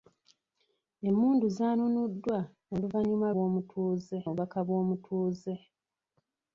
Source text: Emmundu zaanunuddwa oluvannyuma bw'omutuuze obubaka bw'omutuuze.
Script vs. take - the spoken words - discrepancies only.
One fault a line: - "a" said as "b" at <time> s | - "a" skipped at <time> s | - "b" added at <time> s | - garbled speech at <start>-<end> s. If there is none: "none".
none